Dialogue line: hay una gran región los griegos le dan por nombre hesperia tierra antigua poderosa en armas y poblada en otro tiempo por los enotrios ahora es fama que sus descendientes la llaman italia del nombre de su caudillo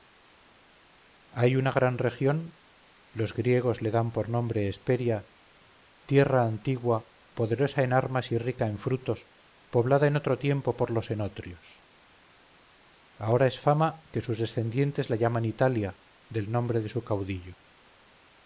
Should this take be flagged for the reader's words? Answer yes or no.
yes